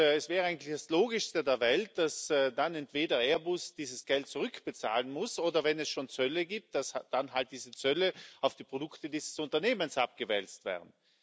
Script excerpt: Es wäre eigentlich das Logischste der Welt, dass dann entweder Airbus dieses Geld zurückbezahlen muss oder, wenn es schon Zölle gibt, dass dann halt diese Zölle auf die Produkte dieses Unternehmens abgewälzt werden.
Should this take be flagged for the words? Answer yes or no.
no